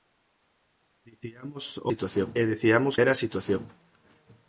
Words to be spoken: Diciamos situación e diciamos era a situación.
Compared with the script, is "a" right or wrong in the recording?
right